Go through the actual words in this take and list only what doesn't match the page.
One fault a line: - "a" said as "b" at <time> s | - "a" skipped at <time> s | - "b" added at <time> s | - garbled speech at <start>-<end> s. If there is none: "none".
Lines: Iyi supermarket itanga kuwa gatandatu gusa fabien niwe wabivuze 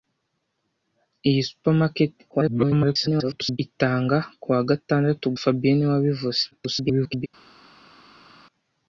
- garbled speech at 2.3-3.6 s
- "gusa" skipped at 5.3 s
- garbled speech at 6.5-7.3 s